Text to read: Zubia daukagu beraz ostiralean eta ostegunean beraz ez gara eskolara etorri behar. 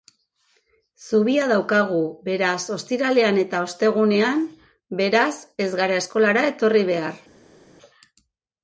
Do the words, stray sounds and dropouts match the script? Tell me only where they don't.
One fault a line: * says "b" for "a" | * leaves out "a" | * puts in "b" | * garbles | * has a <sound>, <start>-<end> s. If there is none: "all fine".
all fine